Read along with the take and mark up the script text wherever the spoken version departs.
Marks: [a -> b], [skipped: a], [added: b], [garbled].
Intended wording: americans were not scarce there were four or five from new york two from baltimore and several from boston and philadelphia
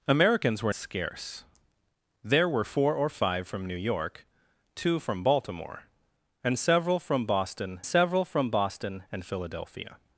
americans were [skipped: not] scarce there were four or five from new york two from baltimore and several from boston [added: several from boston] and philadelphia